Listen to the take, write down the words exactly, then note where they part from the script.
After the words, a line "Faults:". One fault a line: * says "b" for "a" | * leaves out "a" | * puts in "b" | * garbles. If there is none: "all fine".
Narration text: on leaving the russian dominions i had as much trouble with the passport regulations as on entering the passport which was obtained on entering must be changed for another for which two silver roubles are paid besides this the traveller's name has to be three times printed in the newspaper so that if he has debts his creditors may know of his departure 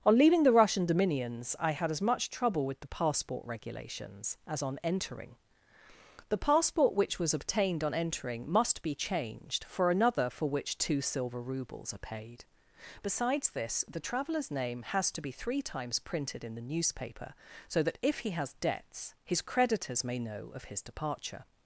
on leaving the russian dominions i had as much trouble with the passport regulations as on entering the passport which was obtained on entering must be changed for another for which two silver roubles are paid besides this the traveller's name has to be three times printed in the newspaper so that if he has debts his creditors may know of his departure
Faults:
all fine